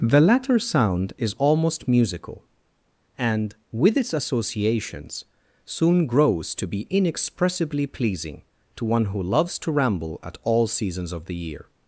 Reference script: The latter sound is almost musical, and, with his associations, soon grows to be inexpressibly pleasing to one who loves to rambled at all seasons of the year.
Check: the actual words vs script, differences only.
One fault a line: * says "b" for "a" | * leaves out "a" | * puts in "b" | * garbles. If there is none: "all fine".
* says "its" for "his"
* says "ramble" for "rambled"